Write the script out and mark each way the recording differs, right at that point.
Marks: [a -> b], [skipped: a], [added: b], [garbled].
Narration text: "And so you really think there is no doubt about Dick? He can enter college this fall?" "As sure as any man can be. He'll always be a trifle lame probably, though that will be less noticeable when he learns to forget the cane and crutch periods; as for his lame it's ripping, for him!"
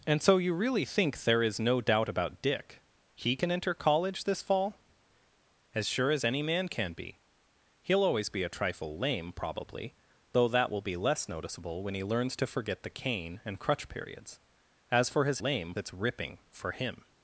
"And so you really think there is no doubt about Dick? He can enter college this fall?" "As sure as any man can be. He'll always be a trifle lame probably, though that will be less noticeable when he learns to forget the cane and crutch periods; as for his lame it's ripping, for him!"